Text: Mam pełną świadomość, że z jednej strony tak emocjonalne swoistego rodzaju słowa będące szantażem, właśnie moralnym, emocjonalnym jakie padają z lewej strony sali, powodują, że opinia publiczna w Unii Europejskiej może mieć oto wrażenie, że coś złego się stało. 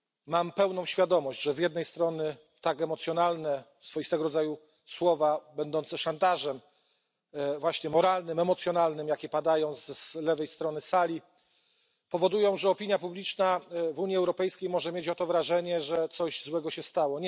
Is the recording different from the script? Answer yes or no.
no